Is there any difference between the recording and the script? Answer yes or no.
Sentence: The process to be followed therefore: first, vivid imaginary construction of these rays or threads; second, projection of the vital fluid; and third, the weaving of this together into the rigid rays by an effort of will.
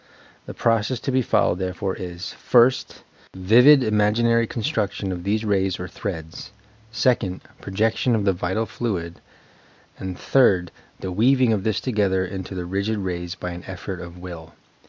yes